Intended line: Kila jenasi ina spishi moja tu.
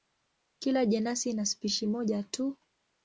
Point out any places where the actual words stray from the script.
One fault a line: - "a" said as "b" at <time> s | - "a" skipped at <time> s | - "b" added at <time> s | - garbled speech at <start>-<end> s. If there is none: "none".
none